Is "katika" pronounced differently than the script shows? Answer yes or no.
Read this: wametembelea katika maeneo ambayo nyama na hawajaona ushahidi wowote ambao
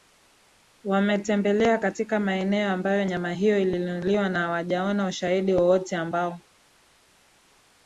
no